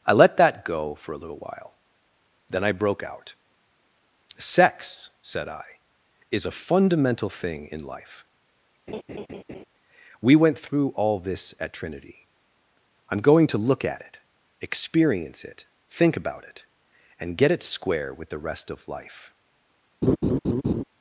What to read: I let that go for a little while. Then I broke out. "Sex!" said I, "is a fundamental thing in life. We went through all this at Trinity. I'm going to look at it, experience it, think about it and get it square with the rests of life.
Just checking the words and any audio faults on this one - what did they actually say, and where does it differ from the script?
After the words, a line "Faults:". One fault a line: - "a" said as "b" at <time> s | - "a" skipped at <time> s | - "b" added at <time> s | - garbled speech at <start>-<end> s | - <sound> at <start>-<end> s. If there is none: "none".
I let that go for a little while. Then I broke out. "Sex!" said I, "is a fundamental thing in life. We went through all this at Trinity. I'm going to look at it, experience it, think about it and get it square with the rest of life.
Faults:
- laugh at 8.9-9.6 s
- "rests" said as "rest" at 18.4 s
- laugh at 20.0-20.8 s